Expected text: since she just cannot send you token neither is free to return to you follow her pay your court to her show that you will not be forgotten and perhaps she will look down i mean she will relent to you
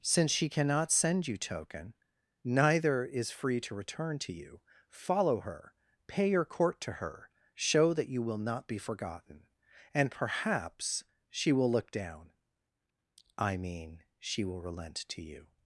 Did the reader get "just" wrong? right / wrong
wrong